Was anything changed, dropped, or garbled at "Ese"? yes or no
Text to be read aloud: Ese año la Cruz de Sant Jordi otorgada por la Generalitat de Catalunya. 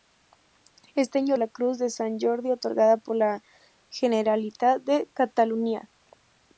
no